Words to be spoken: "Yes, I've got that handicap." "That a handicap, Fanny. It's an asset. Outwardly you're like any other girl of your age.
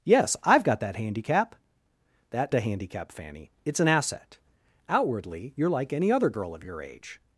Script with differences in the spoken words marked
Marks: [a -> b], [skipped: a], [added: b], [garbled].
"Yes, I've got that handicap." "That a handicap, Fanny. It's an asset. Outwardly you're like any other girl of your age.